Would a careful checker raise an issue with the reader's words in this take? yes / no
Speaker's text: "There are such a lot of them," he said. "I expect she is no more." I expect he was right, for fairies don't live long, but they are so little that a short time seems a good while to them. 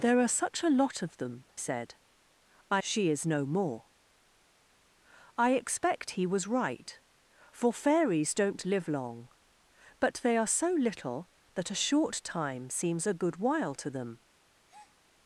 yes